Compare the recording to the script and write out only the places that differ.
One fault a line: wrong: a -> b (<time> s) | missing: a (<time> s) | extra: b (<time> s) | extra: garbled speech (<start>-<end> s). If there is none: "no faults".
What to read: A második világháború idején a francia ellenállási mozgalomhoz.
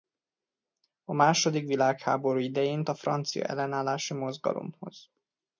no faults